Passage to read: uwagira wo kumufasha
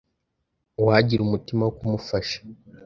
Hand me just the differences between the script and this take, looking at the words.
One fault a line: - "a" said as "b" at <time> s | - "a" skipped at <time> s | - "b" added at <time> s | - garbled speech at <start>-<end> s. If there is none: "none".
- "umutima" added at 1.2 s